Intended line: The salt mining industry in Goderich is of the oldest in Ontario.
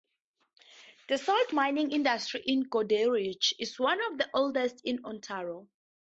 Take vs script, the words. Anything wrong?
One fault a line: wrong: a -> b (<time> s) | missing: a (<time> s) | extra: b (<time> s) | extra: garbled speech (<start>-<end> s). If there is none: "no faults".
extra: one (3.8 s)